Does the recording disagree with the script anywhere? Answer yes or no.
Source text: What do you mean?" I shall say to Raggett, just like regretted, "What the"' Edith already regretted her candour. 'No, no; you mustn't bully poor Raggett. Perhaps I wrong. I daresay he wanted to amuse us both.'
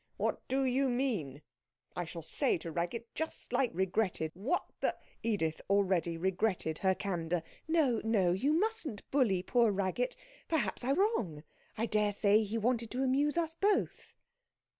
no